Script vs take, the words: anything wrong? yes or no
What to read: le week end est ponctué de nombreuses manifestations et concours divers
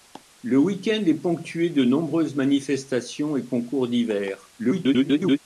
yes